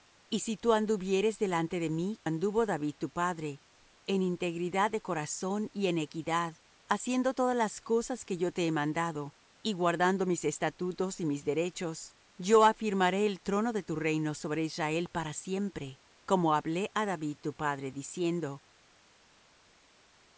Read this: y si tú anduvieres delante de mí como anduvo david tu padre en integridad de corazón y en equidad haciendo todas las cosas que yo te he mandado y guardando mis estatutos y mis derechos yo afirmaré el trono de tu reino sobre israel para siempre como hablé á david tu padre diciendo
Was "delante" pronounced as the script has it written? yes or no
yes